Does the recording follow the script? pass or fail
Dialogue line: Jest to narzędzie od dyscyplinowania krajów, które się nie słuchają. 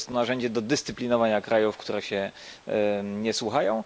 fail